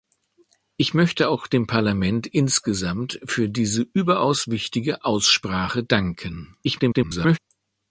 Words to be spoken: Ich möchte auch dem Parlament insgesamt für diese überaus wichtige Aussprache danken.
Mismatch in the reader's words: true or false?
true